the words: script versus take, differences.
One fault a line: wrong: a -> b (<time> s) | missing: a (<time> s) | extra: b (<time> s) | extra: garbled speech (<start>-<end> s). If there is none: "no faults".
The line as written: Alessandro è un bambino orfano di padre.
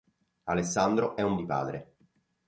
missing: bambino orfano (1.4 s)